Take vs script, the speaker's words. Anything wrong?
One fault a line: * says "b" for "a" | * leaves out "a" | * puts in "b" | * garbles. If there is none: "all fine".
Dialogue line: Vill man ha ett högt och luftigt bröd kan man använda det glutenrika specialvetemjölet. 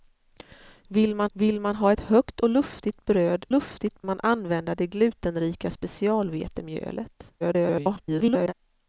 * puts in "vill man"
* says "luftigt" for "kan"
* garbles